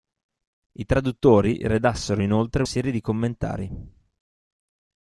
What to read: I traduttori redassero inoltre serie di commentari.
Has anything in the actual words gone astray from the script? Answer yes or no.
no